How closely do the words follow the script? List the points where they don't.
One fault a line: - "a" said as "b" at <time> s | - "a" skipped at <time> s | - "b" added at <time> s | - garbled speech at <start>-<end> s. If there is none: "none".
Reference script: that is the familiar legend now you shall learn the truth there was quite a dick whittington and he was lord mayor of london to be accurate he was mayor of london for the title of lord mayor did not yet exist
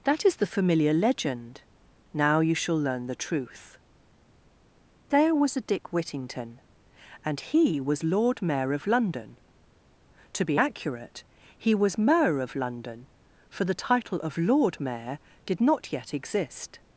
- "quite" skipped at 5.5 s